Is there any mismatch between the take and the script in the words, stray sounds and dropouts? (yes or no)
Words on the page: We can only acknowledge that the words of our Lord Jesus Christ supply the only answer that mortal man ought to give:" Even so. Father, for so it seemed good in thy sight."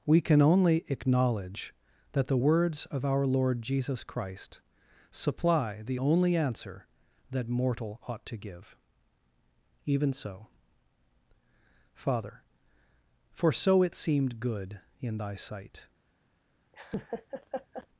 yes